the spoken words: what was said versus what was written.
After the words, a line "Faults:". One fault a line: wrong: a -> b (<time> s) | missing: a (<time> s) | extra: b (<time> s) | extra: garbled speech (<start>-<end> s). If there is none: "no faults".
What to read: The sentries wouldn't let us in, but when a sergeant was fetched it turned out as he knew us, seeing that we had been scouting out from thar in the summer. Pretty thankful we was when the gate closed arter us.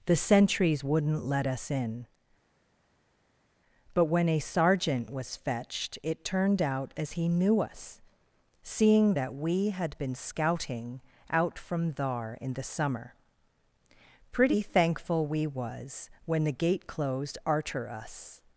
The sentries wouldn't let us in, but when a sergeant was fetched it turned out as he knew us, seeing that we had been scouting out from thar in the summer. Pretty thankful we was when the gate closed arter us.
Faults:
no faults